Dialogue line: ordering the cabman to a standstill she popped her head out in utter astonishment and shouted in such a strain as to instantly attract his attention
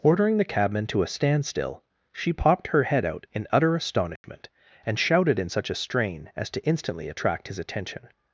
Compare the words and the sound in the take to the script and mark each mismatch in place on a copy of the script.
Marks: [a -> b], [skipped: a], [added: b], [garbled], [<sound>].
ordering the cabman to a standstill she popped her head out in utter astonishment [dropout] and shouted in such a strain as to instantly attract his attention